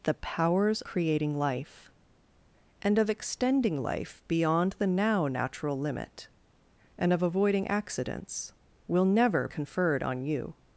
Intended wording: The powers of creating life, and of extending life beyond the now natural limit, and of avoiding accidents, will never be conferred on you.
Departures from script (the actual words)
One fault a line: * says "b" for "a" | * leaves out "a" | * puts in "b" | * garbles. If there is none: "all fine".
* leaves out "of"
* leaves out "be"